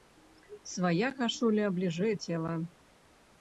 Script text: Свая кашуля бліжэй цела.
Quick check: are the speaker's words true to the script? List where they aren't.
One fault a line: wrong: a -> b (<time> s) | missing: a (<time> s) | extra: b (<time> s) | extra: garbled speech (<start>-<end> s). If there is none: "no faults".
no faults